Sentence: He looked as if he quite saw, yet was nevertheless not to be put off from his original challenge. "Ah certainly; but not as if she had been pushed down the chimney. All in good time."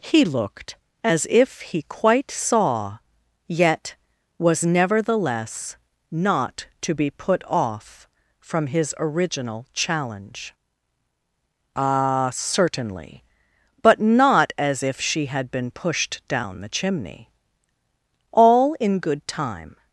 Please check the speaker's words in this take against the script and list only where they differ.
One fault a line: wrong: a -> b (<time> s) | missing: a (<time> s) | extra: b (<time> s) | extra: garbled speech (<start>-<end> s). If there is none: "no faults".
no faults